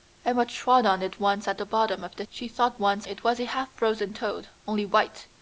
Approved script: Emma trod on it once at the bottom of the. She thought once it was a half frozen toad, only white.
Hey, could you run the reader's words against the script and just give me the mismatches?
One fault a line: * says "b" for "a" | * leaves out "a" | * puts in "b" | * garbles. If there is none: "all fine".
all fine